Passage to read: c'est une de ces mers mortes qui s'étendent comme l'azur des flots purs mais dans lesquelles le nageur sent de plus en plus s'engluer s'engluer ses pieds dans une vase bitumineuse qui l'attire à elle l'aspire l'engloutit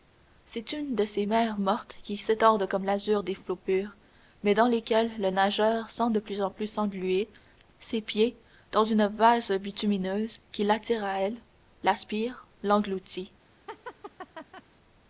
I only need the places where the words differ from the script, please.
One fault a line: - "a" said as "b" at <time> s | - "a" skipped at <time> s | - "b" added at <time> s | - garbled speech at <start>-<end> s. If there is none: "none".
- "s'engluer" skipped at 7.3 s